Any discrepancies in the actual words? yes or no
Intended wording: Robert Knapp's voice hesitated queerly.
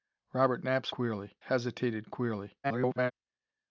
yes